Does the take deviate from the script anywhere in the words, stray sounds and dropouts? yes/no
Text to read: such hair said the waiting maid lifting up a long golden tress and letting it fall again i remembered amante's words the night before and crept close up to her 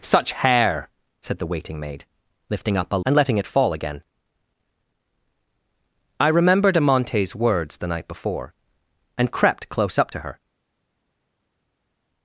yes